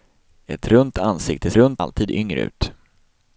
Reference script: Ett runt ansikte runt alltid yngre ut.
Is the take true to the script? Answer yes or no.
yes